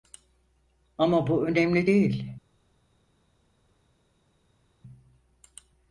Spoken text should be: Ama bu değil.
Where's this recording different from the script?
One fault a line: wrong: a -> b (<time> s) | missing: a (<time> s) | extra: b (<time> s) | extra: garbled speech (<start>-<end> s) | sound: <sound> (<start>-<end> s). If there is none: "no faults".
extra: önemli (1.4 s)